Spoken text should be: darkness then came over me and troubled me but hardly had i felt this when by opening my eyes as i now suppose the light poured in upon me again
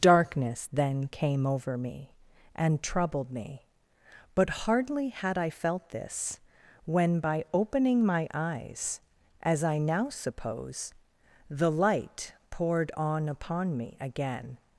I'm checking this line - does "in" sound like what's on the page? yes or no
no